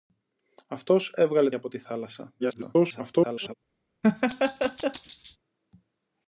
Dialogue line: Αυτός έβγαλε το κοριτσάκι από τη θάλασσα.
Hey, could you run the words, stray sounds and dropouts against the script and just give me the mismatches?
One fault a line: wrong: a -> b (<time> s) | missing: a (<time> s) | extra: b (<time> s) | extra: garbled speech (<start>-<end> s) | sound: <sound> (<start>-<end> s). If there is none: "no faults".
missing: το κοριτσάκι (1.5 s)
extra: garbled speech (2.4-3.5 s)
sound: laugh (4.0-5.4 s)